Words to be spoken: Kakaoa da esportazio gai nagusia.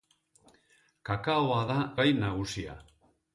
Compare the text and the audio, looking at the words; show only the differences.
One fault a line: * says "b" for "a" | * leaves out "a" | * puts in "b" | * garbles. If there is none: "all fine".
* leaves out "esportazio"